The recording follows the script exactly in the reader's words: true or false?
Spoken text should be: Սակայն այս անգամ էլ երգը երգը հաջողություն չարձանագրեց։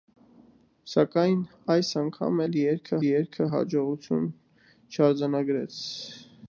true